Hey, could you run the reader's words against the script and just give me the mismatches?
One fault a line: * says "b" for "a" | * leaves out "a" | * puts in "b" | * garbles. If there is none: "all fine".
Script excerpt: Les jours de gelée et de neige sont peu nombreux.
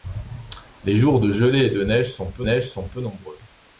* puts in "neige sont peu"